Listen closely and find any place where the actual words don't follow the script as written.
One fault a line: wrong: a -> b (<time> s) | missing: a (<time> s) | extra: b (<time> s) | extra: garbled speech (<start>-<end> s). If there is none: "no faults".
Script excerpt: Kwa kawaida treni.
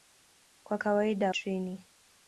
no faults